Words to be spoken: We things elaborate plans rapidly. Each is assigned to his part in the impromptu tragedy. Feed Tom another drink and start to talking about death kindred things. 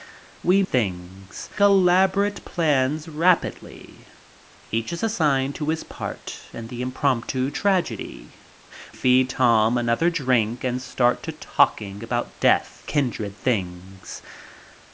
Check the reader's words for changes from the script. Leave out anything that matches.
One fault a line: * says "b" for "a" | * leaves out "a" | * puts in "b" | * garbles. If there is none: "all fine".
all fine